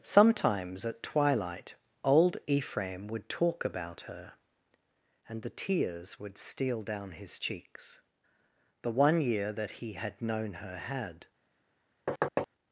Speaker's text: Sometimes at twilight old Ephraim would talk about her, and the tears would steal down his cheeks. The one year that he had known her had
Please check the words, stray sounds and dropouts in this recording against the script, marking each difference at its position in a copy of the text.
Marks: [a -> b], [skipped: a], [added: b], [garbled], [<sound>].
Sometimes at twilight old Ephraim would talk about her, and the tears would steal down his cheeks. The one year that he had known her had [thud]